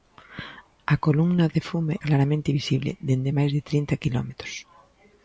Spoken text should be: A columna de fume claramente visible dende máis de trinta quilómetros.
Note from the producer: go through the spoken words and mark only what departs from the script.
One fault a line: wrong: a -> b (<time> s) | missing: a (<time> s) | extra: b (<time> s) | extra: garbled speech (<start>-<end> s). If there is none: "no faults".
no faults